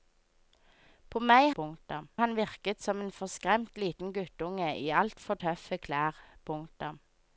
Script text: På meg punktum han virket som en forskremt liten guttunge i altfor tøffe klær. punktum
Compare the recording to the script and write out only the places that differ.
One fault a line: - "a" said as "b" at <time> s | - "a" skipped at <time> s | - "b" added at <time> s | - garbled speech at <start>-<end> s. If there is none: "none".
none